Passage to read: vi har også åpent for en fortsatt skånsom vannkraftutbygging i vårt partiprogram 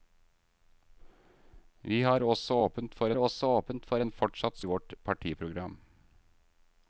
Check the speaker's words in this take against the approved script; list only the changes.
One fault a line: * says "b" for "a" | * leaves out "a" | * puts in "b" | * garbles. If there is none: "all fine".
* puts in "også åpent for"
* leaves out "skånsom vannkraftutbygging"